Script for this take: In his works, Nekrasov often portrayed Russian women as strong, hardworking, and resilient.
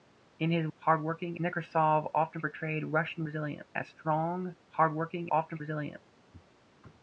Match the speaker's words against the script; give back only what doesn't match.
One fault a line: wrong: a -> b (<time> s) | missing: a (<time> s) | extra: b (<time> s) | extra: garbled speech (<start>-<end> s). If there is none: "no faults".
wrong: works -> hardworking (0.8 s)
wrong: women -> resilient (3.2 s)
wrong: and -> often (5.3 s)